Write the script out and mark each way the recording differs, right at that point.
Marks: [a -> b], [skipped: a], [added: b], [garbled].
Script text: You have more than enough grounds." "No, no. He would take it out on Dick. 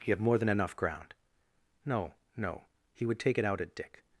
You have more than enough [grounds." -> ground] "No, no. He would take it out [on -> at] Dick.